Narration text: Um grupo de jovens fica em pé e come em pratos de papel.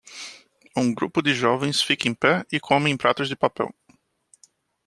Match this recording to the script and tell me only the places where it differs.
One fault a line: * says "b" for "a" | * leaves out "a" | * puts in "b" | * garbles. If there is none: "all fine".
all fine